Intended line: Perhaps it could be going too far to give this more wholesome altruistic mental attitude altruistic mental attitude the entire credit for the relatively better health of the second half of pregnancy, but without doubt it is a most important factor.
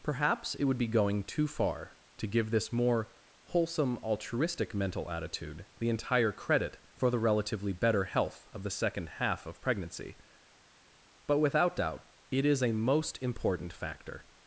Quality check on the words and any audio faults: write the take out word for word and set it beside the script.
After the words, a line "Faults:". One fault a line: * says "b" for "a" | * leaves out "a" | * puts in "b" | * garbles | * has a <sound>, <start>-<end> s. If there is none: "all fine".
Perhaps it would be going too far to give this more wholesome altruistic mental attitude the entire credit for the relatively better health of the second half of pregnancy, but without doubt it is a most important factor.
Faults:
* says "would" for "could"
* leaves out "altruistic mental attitude"